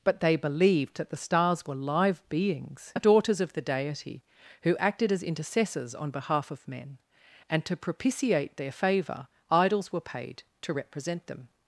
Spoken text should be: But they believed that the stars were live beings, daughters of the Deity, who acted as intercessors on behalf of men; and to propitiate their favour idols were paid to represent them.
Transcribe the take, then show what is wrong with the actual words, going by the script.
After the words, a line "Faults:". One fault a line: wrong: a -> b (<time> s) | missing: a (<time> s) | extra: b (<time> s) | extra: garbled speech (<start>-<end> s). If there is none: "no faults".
But they believed that the stars were live beings, daughters of the Deity, who acted as intercessors on behalf of men; and to propitiate their favour idols were paid to represent them.
Faults:
no faults